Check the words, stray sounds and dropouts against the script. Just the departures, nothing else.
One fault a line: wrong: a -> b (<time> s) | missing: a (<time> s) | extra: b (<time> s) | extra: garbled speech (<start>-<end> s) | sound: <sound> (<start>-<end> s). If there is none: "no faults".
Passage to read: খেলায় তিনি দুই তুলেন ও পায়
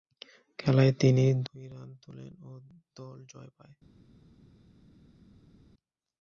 extra: রান (1.7 s)
extra: দল জয় (3.0 s)